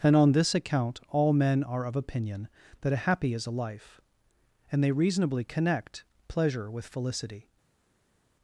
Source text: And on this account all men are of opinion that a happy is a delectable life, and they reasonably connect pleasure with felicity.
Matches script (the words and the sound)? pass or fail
fail